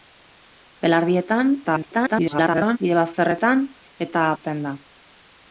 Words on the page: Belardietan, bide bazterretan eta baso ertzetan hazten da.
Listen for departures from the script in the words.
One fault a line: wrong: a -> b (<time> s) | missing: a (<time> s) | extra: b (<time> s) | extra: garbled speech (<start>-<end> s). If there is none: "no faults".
extra: garbled speech (1.6-2.8 s)
missing: baso ertzetan (4.3 s)